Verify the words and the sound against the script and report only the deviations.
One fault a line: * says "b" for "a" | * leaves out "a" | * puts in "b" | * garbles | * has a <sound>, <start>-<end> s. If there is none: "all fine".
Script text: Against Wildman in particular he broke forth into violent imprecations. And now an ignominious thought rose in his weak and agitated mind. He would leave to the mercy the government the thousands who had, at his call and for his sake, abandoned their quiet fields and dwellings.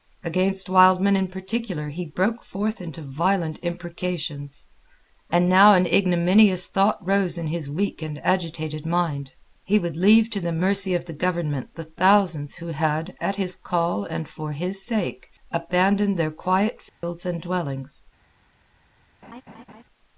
* puts in "of"
* has a dropout, 16.9-17.0 s
* has a laugh, 19.2-19.8 s